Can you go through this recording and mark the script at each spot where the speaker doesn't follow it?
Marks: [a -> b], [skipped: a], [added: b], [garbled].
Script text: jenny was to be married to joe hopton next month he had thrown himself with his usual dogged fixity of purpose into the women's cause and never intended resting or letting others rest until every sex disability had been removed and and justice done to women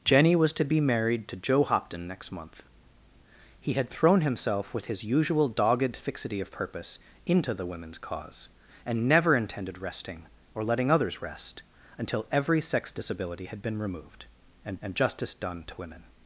jenny was to be married to joe hopton next month he had thrown himself with his usual dogged fixity of purpose into the women's cause and never intended resting or letting others rest until every sex disability had been removed and and justice done to women